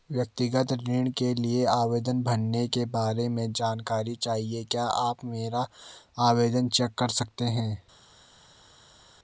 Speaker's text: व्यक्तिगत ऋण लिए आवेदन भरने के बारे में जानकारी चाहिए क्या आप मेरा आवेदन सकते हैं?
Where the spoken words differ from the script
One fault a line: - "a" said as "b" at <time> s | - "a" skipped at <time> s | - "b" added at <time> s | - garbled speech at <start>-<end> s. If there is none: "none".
- "के" added at 1.1 s
- "चेक कर" added at 6.7 s